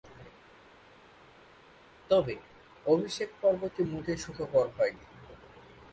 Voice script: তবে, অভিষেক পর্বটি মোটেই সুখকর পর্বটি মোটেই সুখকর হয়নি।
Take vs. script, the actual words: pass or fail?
fail